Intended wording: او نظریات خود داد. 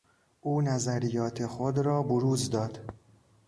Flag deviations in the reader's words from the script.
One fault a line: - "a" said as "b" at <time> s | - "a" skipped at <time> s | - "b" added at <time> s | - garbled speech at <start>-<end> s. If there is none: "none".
- "را بروز" added at 1.8 s